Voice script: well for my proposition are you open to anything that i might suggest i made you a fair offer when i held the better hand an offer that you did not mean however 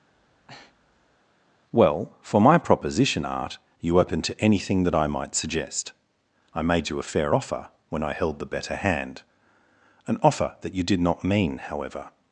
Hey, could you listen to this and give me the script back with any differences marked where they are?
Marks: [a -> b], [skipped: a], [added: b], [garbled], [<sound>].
[breath] well for my proposition [are -> art] you open to anything that i might suggest i made you a fair offer when i held the better hand an offer that you did not mean however